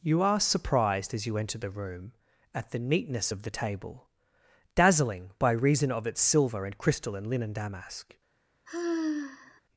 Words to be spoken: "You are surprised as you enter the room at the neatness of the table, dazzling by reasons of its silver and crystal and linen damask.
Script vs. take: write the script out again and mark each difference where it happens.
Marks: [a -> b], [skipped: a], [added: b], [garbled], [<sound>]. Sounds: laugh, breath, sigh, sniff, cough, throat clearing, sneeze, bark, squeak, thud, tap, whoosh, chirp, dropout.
"You are surprised as you enter the room at the neatness of the table, dazzling by [reasons -> reason] of its silver and crystal and linen damask. [sigh]